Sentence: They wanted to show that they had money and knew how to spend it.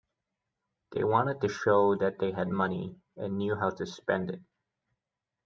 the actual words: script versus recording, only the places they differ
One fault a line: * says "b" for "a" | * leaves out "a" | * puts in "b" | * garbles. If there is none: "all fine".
all fine